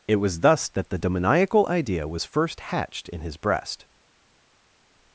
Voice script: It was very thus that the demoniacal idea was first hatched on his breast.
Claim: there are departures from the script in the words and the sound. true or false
true